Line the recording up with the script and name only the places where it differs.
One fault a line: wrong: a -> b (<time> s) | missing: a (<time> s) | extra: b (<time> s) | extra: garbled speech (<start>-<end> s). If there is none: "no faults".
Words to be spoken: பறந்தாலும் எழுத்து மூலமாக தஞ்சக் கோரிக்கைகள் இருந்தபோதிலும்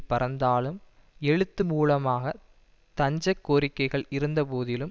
no faults